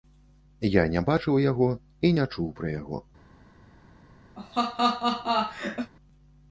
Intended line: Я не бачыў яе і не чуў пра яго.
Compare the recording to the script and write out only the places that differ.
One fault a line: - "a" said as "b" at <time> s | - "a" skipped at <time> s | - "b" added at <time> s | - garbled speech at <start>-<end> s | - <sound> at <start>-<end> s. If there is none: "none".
- "яе" said as "яго" at 1.5 s
- laugh at 4.4-5.9 s